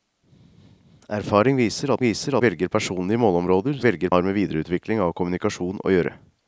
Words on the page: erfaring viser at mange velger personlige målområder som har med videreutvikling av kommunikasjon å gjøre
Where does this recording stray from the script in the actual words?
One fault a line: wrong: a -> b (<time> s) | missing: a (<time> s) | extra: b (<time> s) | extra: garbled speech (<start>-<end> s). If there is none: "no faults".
wrong: mange -> viser (2.0 s)
wrong: som -> velger (3.8 s)